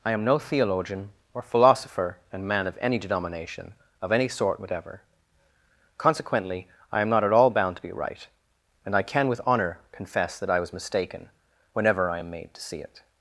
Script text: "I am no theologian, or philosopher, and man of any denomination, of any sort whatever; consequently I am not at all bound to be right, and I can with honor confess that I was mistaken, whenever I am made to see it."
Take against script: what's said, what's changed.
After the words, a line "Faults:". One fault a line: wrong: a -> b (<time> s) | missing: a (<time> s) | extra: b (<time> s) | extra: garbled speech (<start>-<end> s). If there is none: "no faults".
"I am no theologian, or philosopher, and man of any denomination, of any sort whatever; consequently I am not at all bound to be right, and I can with honor confess that I was mistaken, whenever I am made to see it."
Faults:
no faults